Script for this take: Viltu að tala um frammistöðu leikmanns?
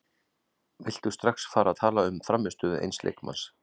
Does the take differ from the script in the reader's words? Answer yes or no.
yes